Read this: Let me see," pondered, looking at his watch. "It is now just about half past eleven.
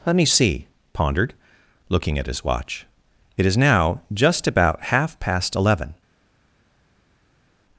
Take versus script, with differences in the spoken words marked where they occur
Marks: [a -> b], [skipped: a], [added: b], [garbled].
Let me see," pondered, looking at his watch. "It is now just about half past eleven.